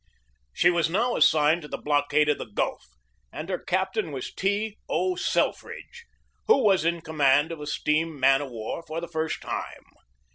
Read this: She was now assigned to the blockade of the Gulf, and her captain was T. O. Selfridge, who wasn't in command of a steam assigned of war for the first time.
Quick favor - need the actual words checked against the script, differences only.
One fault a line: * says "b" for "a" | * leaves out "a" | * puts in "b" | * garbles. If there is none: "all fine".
* says "was" for "wasn't"
* says "man" for "assigned"